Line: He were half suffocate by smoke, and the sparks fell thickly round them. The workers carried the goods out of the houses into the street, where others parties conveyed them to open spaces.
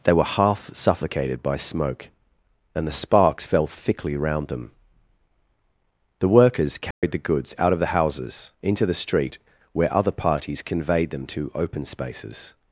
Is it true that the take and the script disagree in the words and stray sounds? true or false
true